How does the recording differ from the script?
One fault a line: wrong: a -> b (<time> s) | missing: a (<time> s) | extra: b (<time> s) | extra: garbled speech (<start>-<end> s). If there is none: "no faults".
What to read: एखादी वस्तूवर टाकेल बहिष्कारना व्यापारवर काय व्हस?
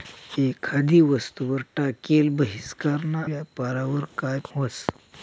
no faults